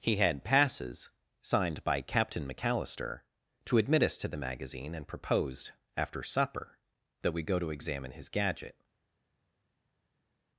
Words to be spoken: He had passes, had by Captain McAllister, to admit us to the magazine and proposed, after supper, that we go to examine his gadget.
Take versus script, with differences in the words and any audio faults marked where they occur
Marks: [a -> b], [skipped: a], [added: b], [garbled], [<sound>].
He had passes, [had -> signed] by Captain McAllister, to admit us to the magazine and proposed, after supper, that we go to examine his gadget.